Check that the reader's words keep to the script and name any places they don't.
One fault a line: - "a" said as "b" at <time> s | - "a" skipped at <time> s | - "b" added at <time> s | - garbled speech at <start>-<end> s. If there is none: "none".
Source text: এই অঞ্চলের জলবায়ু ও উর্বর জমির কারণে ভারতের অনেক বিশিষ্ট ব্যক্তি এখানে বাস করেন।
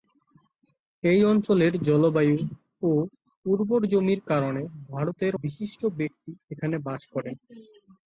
- "অনেক" skipped at 5.3 s